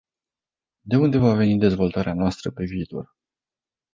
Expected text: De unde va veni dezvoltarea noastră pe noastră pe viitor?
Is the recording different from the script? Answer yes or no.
yes